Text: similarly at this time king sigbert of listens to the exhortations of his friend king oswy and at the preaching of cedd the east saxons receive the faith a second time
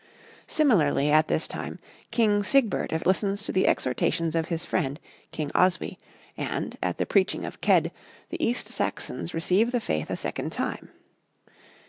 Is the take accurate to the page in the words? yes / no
yes